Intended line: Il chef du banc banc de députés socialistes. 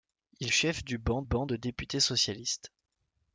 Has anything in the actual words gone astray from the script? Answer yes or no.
no